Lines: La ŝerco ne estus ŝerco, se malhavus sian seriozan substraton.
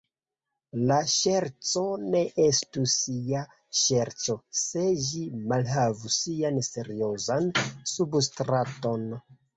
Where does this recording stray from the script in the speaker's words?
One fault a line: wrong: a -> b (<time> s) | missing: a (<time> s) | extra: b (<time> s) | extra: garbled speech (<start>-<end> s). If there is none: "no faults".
extra: ja (3.3 s)
extra: ĝi (5.1 s)